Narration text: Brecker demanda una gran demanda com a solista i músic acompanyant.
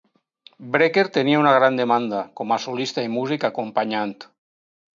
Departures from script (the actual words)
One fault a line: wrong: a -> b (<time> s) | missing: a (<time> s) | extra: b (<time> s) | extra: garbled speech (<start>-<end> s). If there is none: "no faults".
wrong: demanda -> tenia (1.2 s)